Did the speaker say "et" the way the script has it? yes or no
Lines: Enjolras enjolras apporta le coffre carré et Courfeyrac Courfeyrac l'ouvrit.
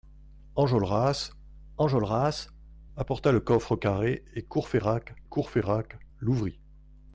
yes